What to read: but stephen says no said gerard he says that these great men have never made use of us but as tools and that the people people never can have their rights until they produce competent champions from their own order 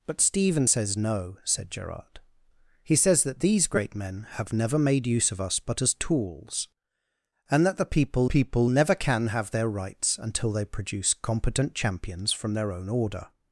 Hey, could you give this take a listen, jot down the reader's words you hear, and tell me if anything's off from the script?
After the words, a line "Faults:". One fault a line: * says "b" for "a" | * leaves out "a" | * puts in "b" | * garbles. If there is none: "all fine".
but stephen says no said gerard he says that these great men have never made use of us but as tools and that the people people never can have their rights until they produce competent champions from their own order
Faults:
all fine